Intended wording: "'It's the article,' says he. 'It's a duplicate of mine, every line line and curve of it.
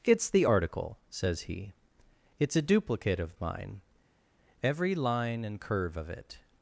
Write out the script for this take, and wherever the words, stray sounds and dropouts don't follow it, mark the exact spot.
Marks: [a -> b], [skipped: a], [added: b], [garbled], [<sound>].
"'It's the article,' says he. 'It's a duplicate of mine, every line [skipped: line] and curve of it.